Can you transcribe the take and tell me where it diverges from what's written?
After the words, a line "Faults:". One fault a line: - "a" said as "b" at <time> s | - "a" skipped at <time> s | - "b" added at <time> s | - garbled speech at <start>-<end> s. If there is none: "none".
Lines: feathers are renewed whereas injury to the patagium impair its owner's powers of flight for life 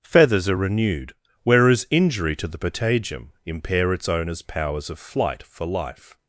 feathers are renewed whereas injury to the patagium impair its owner's powers of flight for life
Faults:
none